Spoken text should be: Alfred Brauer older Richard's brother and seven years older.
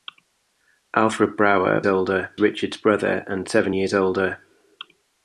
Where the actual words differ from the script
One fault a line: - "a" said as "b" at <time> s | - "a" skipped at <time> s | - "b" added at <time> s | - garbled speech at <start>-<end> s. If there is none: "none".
none